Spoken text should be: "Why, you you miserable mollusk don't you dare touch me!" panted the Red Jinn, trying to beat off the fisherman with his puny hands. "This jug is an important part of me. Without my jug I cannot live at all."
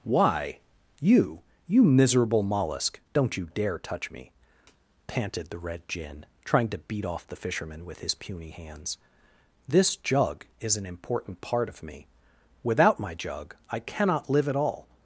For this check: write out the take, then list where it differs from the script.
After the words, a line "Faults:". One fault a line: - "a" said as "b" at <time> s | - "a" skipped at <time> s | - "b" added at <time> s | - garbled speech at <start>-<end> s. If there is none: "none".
"Why, you you miserable mollusk don't you dare touch me!" panted the Red Jinn, trying to beat off the fisherman with his puny hands. "This jug is an important part of me. Without my jug I cannot live at all."
Faults:
none